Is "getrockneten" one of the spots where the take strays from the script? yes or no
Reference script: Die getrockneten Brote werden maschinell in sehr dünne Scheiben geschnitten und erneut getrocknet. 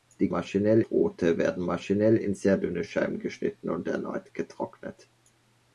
yes